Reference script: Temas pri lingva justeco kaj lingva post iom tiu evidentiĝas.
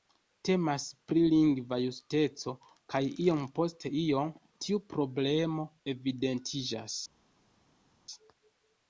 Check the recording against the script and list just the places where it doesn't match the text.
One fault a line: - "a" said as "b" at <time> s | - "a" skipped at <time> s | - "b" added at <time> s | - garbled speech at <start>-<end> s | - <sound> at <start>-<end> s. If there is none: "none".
- "lingva" said as "iom" at 3.3 s
- "problemo" added at 5.0 s